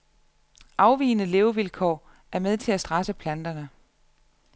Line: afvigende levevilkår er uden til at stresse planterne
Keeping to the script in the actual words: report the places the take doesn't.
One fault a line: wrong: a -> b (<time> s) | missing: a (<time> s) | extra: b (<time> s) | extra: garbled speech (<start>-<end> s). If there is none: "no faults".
wrong: uden -> med (2.4 s)